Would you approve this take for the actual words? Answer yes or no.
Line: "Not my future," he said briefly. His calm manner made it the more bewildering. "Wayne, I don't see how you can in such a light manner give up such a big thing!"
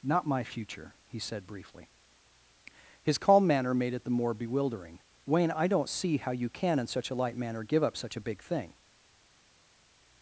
yes